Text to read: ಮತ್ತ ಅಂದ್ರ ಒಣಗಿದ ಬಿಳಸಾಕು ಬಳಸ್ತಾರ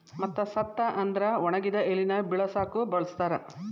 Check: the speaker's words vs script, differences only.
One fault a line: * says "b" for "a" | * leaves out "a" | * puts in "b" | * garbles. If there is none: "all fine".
* puts in "ಸತ್ತ"
* puts in "ಎಲಿನ"